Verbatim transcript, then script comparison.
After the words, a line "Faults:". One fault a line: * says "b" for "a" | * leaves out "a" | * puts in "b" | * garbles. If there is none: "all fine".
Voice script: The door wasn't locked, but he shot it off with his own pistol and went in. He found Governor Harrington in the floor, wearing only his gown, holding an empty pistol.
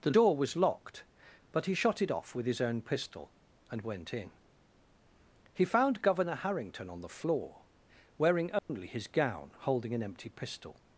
The door was locked, but he shot it off with his own pistol and went in. He found Governor Harrington on the floor, wearing only his gown, holding an empty pistol.
Faults:
* says "was" for "wasn't"
* says "on" for "in"